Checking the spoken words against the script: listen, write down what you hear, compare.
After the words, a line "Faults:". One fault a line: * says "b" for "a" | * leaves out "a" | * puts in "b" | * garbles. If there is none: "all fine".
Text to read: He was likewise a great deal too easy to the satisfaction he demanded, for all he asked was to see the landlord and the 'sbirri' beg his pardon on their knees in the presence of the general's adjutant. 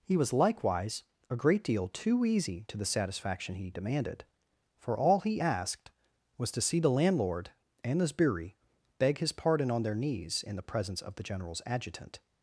He was likewise a great deal too easy to the satisfaction he demanded, for all he asked was to see the landlord and the 'sbirri' beg his pardon on their knees in the presence of the general's adjutant.
Faults:
all fine